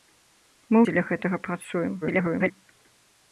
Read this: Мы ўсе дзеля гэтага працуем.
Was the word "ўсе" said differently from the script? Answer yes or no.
yes